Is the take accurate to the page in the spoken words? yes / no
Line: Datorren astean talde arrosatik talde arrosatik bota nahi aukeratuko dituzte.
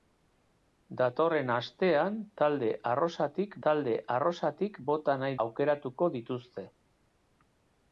yes